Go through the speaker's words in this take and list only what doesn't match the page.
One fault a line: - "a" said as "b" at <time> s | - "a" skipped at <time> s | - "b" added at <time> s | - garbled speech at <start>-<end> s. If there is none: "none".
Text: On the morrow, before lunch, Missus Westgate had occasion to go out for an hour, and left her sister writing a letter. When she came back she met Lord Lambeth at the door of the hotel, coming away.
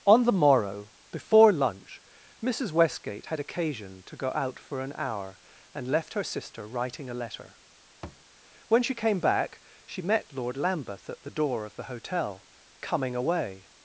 none